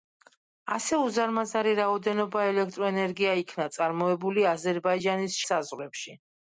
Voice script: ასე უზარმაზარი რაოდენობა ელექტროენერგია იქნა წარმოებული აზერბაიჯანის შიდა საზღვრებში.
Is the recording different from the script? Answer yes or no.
yes